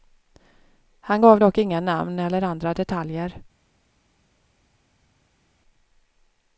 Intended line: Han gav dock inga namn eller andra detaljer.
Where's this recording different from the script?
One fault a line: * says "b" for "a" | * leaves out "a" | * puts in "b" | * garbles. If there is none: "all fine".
all fine